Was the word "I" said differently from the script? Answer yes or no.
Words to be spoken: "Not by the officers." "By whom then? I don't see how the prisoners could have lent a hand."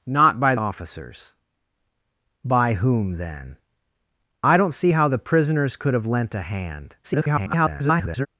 no